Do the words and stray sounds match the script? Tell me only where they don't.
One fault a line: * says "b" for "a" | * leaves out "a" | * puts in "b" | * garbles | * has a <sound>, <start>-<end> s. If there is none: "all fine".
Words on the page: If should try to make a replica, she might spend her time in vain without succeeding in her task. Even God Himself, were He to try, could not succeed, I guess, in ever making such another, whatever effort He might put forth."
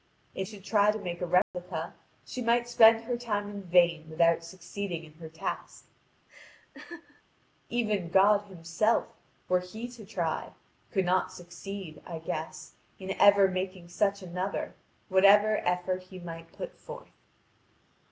* has a dropout, 1.4-1.5 s
* has a laugh, 6.3-7.2 s